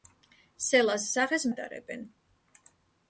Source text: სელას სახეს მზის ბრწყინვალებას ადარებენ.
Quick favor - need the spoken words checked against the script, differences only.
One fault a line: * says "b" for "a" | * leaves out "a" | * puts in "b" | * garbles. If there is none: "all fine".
* leaves out "მზის ბრწყინვალებას"